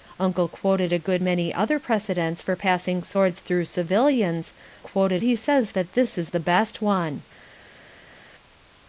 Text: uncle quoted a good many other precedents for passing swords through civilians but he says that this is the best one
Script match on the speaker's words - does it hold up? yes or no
no